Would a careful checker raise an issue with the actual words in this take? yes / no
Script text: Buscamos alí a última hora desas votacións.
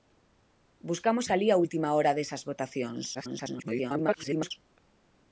yes